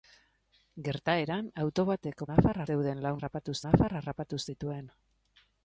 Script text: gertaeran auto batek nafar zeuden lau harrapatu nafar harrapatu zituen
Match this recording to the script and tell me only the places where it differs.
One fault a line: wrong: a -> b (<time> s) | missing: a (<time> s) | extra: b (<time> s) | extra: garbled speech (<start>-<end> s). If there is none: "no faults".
no faults